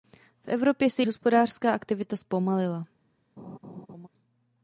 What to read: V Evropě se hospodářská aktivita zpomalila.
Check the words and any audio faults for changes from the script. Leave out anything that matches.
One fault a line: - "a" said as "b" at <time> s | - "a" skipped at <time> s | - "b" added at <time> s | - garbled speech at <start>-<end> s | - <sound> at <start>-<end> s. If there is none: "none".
- laugh at 3.4-4.1 s